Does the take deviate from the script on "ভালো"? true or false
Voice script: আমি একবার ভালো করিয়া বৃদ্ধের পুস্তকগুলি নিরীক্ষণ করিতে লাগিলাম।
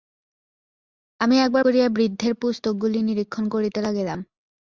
true